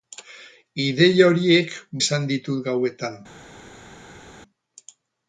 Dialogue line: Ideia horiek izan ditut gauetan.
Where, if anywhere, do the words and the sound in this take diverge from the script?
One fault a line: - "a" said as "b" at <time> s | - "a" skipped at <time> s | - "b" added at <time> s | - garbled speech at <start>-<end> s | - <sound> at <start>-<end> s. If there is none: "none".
none